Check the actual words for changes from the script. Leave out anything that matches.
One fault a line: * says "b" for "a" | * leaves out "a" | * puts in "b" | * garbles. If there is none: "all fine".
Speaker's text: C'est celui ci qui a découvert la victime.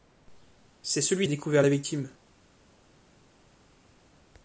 * leaves out "ci qui"